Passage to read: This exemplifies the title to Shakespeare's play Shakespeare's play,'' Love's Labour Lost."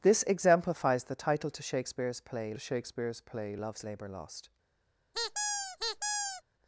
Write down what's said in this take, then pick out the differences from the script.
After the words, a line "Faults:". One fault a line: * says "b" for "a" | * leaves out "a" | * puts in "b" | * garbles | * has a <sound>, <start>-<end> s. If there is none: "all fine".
This exemplifies the title to Shakespeare's play Shakespeare's play,'' Love's Labour Lost."
Faults:
* has a squeak, 5.1-6.4 s